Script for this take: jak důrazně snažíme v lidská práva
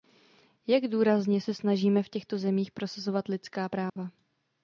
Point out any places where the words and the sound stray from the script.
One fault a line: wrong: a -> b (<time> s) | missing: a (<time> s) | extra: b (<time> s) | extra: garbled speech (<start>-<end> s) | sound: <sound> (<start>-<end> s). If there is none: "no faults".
extra: se (1.4 s)
extra: těchto zemích prosazovat (2.1 s)
sound: dropout (3.9-4.0 s)